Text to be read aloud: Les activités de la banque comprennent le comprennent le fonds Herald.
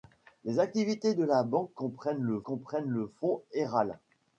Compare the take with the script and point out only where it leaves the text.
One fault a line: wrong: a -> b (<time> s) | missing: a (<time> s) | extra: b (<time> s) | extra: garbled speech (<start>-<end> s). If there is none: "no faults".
no faults